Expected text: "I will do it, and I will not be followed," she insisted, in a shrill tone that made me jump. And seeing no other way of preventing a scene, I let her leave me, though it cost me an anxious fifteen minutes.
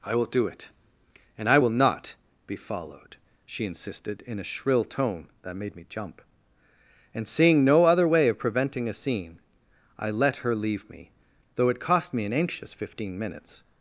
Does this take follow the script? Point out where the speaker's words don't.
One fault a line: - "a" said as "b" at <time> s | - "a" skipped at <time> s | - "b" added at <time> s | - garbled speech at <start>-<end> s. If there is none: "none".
none